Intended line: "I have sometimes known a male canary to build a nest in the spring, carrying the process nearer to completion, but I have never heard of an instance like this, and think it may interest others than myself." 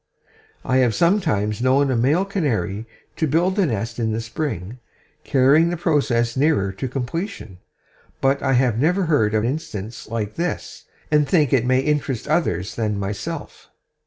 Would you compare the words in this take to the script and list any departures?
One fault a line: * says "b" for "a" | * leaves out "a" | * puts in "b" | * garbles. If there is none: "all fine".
* leaves out "an"